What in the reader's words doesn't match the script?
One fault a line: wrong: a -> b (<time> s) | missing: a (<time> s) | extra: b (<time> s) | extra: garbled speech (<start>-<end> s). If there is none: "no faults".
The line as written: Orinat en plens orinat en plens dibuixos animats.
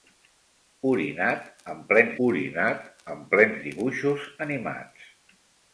no faults